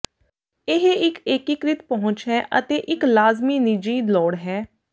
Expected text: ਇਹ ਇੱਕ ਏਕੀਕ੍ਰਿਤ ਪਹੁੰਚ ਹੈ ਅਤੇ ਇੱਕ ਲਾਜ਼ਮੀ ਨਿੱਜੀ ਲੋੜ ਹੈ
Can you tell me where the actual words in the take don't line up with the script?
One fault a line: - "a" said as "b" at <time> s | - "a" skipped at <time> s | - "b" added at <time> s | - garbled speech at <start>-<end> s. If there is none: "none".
none